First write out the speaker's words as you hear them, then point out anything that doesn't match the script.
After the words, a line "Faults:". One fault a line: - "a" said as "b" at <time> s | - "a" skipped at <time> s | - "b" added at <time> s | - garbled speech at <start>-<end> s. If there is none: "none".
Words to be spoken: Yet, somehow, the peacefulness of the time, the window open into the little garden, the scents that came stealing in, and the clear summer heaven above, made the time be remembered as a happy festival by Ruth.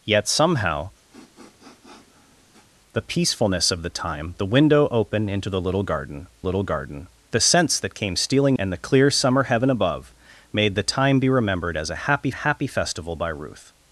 Yet, somehow, the peacefulness of the time, the window open into the little garden little garden, the scents that came stealing and the clear summer heaven above, made the time be remembered as a happy happy festival by Ruth.
Faults:
- "little garden" added at 6.4 s
- "in" skipped at 8.6 s
- "happy" added at 12.3 s